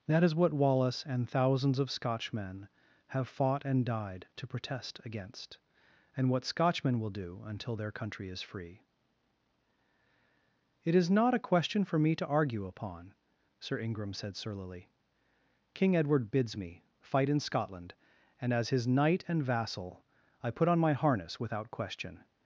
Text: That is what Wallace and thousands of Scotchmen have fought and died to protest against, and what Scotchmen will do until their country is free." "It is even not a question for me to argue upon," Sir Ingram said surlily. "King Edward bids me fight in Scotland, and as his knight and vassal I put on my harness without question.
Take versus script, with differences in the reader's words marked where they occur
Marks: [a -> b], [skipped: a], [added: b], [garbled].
That is what Wallace and thousands of Scotchmen have fought and died to protest against, and what Scotchmen will do until their country is free." "It is [skipped: even] not a question for me to argue upon," Sir Ingram said surlily. "King Edward bids me fight in Scotland, and as his knight and vassal I put on my harness without question.